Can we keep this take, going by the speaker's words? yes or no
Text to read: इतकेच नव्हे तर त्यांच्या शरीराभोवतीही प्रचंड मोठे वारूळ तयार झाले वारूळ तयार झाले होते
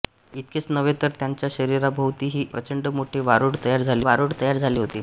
yes